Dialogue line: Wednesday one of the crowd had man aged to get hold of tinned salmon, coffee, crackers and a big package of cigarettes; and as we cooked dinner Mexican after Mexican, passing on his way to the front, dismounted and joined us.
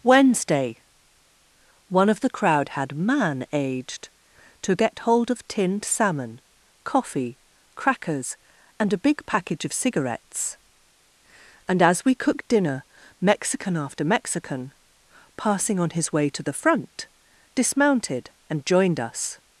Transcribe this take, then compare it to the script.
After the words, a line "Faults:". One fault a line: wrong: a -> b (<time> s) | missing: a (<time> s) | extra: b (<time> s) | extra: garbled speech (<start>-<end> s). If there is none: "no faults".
Wednesday one of the crowd had man aged to get hold of tinned salmon, coffee, crackers and a big package of cigarettes; and as we cooked dinner Mexican after Mexican, passing on his way to the front, dismounted and joined us.
Faults:
no faults